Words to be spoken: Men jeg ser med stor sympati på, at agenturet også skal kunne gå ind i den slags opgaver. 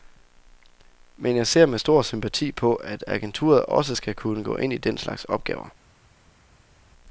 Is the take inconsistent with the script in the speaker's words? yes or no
no